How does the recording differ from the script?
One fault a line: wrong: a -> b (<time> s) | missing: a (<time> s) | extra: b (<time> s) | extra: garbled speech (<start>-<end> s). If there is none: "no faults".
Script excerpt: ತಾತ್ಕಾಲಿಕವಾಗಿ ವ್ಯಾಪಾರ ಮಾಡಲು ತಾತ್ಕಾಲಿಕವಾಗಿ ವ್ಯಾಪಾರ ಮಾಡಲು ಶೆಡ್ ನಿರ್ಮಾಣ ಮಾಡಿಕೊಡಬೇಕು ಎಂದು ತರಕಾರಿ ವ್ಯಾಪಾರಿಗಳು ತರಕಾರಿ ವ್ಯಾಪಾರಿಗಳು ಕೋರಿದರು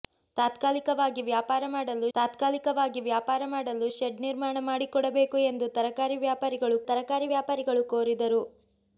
no faults